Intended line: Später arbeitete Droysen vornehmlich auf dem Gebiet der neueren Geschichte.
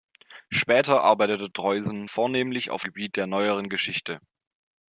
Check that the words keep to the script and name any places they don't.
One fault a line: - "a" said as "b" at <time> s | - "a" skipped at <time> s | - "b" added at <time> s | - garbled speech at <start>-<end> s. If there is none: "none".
- "dem" skipped at 2.8 s